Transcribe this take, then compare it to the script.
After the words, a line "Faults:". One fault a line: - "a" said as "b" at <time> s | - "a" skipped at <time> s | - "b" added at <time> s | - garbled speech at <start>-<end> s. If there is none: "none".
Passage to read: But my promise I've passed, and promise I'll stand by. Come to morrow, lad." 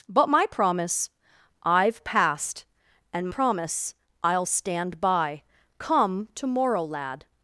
But my promise I've passed, and promise I'll stand by. Come to morrow, lad."
Faults:
none